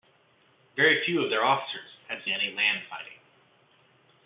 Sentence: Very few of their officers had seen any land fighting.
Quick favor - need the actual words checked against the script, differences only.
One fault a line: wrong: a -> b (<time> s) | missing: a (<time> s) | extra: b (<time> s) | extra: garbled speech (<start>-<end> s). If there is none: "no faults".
missing: seen (2.2 s)